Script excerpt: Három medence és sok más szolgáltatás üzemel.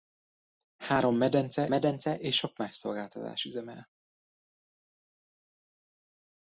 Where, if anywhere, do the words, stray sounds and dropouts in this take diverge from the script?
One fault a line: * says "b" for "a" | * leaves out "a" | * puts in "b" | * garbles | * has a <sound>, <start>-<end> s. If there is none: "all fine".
* puts in "medence"